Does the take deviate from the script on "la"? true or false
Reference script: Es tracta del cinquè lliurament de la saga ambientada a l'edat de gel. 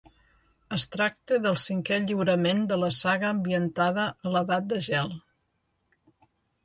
false